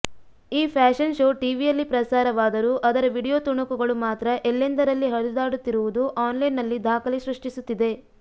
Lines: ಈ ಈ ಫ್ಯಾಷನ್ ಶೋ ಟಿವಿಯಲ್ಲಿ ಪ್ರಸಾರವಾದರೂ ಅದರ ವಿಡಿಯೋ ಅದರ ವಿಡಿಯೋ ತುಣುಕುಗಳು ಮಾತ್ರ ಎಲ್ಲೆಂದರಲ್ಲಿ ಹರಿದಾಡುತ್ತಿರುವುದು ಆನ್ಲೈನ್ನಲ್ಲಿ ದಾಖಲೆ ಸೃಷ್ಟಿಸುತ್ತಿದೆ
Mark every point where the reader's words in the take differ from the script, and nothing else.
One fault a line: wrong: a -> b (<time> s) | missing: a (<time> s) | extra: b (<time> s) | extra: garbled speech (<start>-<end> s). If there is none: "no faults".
missing: ಈ (0.7 s)
missing: ಅದರ ವಿಡಿಯೋ (3.4 s)